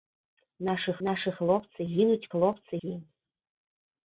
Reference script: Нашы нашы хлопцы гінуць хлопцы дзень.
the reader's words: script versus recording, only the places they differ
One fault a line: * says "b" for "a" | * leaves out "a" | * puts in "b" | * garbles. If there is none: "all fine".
all fine